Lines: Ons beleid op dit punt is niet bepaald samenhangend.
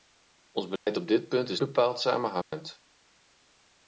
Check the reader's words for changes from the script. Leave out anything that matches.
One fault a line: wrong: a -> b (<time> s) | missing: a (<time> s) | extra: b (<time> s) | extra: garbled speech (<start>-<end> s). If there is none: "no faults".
missing: niet (1.6 s)